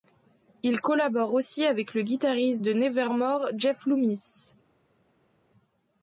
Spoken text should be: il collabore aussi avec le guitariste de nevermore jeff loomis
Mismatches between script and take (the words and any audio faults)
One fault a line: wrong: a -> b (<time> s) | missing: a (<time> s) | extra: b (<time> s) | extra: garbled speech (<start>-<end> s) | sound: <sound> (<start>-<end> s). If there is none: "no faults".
no faults